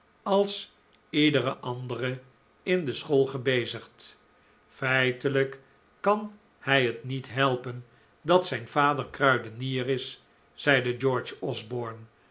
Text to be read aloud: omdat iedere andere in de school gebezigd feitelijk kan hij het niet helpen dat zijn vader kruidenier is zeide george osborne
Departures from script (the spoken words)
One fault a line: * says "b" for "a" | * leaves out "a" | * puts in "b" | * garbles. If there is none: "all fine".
* says "als" for "omdat"